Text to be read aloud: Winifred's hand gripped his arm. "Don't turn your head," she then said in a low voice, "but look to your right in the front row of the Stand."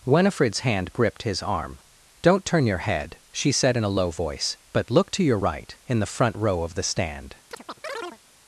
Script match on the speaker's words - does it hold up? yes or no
no